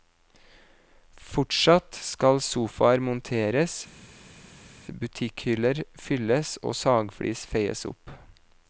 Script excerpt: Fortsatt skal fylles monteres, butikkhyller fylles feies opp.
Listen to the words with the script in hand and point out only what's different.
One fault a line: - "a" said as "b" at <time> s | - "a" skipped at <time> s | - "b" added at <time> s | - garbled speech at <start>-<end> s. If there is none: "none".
- "fylles" said as "sofaer" at 2.5 s
- "og sagflis" added at 6.6 s